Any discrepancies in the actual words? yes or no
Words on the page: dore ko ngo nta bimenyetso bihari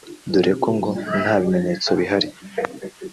no